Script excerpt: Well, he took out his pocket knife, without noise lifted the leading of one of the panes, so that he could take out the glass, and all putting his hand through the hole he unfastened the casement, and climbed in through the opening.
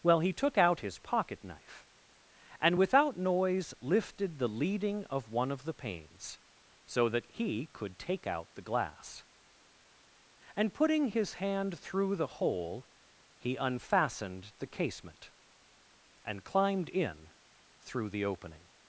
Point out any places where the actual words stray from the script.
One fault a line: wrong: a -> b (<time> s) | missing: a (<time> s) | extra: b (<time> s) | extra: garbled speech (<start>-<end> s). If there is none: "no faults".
extra: and (2.6 s)
missing: all (10.7 s)